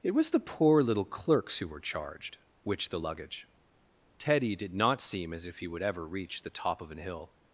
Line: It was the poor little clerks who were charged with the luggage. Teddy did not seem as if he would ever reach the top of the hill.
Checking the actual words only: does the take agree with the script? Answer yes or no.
no